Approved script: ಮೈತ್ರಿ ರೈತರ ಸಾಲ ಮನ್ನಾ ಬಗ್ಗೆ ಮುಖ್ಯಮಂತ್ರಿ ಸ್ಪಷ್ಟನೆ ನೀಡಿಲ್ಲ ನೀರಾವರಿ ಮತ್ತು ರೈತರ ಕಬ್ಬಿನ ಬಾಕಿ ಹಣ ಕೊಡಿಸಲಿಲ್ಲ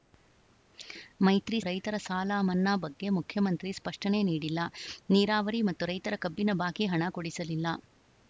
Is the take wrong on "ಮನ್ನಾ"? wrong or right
right